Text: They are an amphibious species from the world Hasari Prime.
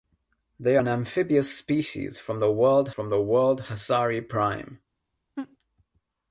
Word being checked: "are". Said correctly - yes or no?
no